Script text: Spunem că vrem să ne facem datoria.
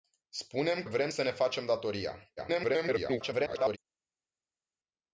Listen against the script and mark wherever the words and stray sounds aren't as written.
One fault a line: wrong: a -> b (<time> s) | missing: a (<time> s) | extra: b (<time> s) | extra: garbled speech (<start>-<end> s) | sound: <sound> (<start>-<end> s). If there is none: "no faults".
missing: că (0.8 s)
extra: garbled speech (2.4-3.8 s)